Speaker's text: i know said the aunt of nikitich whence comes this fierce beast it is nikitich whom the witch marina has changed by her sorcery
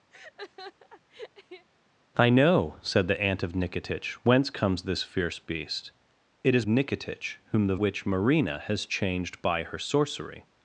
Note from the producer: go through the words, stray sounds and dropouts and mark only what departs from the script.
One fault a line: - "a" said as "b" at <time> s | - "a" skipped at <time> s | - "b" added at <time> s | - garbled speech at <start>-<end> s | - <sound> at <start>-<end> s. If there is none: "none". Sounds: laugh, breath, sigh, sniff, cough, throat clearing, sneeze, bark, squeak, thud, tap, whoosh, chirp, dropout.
- laugh at 0.1-1.7 s